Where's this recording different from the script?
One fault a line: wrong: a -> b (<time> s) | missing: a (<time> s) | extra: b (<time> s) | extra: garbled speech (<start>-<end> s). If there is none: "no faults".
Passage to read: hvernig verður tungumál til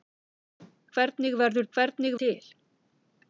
wrong: tungumál -> hvernig (1.8 s)